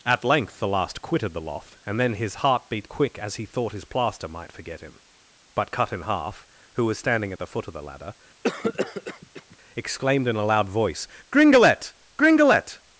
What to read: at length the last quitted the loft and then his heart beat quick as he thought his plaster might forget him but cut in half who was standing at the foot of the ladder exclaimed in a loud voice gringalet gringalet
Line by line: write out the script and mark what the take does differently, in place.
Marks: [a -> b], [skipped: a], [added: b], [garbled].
at length the last quitted the loft and then his heart beat quick as he thought his plaster might forget him but cut in half who was standing at the foot of the ladder exclaimed in a loud voice gringalet gringalet